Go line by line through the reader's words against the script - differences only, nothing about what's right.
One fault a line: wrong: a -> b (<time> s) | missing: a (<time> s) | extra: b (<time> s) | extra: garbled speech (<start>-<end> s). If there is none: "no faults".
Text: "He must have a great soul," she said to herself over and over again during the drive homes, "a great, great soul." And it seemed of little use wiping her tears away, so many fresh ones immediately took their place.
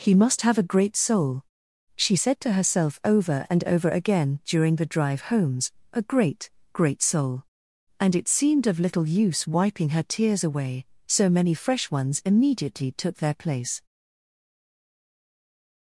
no faults